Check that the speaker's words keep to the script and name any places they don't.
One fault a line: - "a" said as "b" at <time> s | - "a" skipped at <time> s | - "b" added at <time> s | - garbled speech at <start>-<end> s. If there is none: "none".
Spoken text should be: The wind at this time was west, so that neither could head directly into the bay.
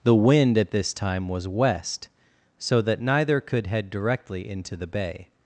none